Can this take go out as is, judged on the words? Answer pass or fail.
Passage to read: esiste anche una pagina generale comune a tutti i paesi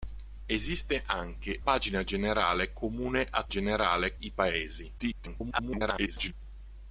fail